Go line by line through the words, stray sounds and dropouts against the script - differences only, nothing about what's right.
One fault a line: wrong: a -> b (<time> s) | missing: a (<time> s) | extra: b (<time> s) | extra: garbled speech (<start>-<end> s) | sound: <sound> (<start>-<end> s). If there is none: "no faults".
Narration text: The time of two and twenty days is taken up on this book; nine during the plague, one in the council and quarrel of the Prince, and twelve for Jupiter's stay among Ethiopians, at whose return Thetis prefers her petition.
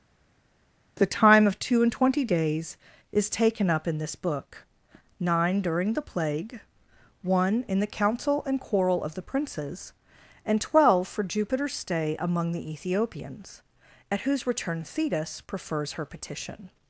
wrong: on -> in (3.9 s)
wrong: Prince -> Princes (9.2 s)
extra: the (12.5 s)